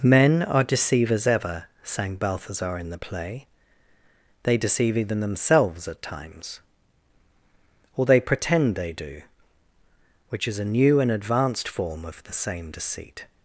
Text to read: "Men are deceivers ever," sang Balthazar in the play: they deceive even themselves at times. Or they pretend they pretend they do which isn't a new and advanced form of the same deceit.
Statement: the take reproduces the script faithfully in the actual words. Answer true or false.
false